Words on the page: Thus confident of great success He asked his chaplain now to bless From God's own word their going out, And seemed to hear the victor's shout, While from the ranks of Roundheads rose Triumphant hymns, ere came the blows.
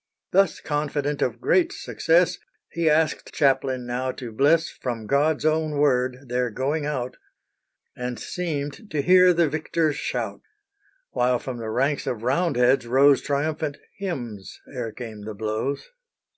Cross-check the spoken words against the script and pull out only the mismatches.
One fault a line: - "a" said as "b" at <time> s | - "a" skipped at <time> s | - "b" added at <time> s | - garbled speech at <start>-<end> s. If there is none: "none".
- "his" skipped at 3.3 s